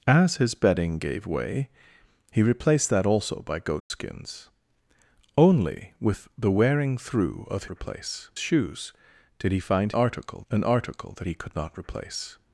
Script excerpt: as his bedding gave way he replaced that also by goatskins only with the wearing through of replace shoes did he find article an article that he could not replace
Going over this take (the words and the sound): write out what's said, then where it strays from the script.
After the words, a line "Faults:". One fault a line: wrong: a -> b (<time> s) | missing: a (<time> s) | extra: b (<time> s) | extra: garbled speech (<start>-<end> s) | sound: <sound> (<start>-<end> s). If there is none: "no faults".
as his bedding gave way he replaced that also by goatskins only with the wearing through of replace shoes did he find article an article that he could not replace
Faults:
sound: dropout (3.8-3.9 s)